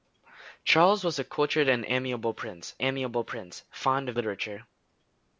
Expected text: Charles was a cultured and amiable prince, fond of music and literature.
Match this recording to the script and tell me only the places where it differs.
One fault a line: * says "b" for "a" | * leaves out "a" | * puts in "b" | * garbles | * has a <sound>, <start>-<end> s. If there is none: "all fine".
* puts in "amiable prince"
* leaves out "music and"